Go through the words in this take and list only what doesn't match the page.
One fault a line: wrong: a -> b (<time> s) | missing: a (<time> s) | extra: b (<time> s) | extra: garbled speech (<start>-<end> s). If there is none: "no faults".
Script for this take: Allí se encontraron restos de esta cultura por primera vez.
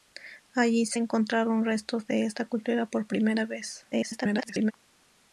extra: garbled speech (3.9-4.7 s)